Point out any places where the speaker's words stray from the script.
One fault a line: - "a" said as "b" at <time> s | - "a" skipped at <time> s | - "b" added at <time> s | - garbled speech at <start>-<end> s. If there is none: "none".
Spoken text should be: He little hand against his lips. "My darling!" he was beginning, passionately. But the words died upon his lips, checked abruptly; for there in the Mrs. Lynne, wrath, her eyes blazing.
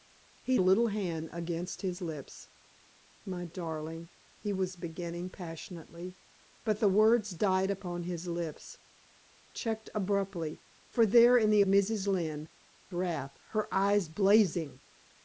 none